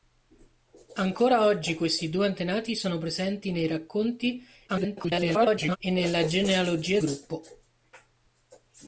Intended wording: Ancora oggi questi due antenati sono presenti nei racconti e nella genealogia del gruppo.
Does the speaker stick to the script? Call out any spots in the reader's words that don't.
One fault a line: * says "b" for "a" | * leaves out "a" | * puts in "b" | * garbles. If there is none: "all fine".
* garbles
* leaves out "del"